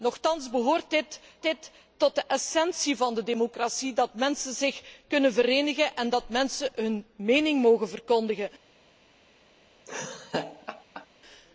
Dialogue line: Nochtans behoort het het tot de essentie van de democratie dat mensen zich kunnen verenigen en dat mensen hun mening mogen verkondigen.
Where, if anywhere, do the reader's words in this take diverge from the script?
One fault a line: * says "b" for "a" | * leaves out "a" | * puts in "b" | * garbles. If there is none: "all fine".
all fine